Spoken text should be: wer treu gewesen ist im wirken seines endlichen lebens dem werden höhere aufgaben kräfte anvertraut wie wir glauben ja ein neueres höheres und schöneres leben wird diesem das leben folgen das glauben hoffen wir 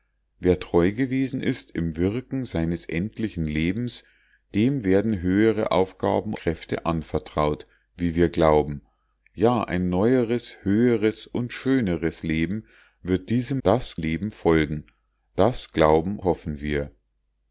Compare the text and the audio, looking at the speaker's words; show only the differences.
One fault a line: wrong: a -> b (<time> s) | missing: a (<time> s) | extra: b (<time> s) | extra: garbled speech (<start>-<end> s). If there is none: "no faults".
no faults